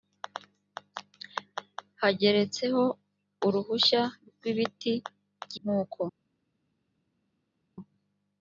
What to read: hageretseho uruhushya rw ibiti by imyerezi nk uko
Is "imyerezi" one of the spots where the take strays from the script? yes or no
yes